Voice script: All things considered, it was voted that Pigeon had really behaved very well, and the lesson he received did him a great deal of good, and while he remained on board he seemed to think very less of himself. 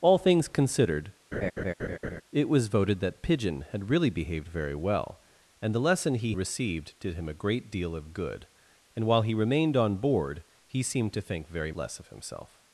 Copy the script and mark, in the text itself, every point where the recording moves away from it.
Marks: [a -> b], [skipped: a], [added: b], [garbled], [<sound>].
All things considered, [laugh] it was voted that Pigeon had really behaved very well, and the lesson he received did him a great deal of good, and while he remained on board he seemed to think very less of himself.